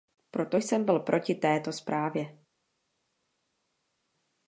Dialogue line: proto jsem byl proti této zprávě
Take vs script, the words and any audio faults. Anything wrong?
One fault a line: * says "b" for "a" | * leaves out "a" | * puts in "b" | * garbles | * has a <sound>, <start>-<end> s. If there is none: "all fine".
all fine